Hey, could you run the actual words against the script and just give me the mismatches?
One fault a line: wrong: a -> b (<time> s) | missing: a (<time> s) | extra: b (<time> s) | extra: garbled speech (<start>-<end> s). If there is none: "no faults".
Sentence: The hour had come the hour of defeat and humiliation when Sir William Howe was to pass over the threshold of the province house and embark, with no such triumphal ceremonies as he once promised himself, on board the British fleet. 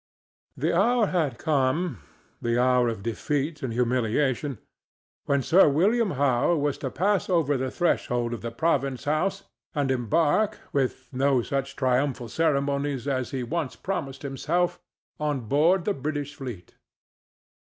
no faults